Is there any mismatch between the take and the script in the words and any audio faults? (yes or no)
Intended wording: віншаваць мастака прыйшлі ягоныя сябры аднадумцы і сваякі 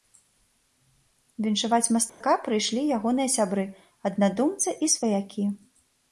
yes